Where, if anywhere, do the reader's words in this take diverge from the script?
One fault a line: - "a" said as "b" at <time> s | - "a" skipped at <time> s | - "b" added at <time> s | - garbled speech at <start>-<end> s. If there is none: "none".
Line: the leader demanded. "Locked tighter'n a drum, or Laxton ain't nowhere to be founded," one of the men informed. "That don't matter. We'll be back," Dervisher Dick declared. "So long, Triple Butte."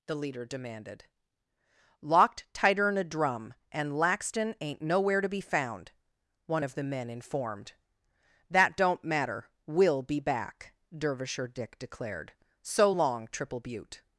- "or" said as "and" at 3.7 s
- "founded" said as "found" at 5.4 s